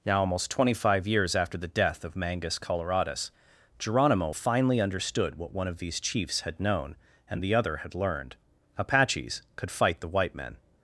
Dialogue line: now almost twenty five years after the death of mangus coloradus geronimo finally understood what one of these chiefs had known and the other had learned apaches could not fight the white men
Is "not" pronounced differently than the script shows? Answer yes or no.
yes